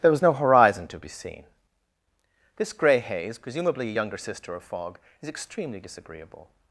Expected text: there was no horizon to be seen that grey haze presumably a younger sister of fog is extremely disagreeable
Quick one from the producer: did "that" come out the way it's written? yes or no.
no